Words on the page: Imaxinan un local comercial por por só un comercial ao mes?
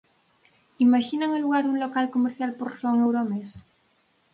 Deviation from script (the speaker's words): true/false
true